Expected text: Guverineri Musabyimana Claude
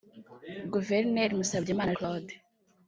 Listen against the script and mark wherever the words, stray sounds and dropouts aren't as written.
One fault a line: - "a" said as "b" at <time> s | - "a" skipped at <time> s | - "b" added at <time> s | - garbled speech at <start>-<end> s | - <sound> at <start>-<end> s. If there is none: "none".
none